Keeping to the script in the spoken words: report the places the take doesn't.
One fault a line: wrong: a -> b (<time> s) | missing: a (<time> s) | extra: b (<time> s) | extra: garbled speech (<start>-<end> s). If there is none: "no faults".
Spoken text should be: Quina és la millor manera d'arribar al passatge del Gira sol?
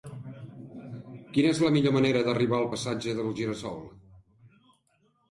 no faults